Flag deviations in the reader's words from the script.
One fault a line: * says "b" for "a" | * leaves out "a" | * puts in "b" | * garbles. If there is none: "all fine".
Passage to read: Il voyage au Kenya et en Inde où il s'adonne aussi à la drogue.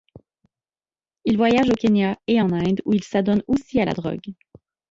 all fine